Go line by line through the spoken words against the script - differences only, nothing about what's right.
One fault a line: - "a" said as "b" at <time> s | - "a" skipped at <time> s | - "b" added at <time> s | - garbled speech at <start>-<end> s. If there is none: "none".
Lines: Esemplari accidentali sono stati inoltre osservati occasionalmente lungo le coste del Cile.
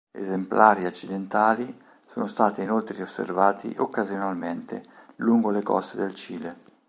none